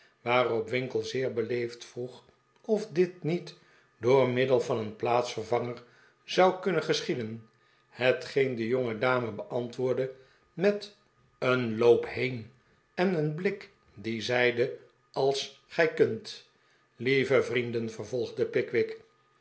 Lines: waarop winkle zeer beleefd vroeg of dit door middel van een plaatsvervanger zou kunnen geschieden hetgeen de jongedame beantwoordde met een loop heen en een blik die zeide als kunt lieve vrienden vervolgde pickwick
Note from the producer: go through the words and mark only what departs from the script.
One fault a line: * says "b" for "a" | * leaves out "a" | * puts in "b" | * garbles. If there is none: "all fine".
* puts in "niet"
* puts in "gij"